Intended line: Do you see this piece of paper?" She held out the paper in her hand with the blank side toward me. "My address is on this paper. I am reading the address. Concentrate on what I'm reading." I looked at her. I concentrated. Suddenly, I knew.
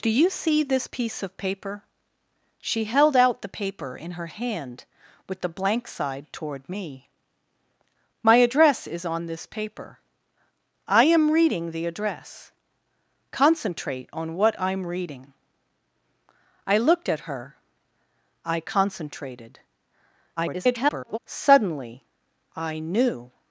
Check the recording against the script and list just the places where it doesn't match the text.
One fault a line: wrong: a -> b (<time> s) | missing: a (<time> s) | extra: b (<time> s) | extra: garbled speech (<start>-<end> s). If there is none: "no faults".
extra: garbled speech (20.4-21.2 s)